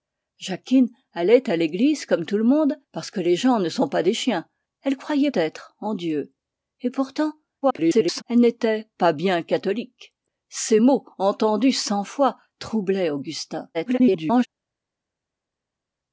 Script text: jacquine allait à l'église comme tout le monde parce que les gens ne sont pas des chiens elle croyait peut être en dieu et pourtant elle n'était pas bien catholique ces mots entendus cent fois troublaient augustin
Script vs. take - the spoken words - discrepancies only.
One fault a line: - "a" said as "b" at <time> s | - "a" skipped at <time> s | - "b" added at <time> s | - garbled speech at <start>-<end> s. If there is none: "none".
- "peut" skipped at 5.3 s
- garbled speech at 7.6-8.2 s
- garbled speech at 13.7-14.5 s